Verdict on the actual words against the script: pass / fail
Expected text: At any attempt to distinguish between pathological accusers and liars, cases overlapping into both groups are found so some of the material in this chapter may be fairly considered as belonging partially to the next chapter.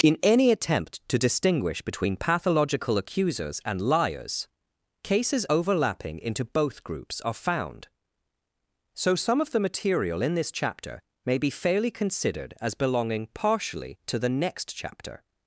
fail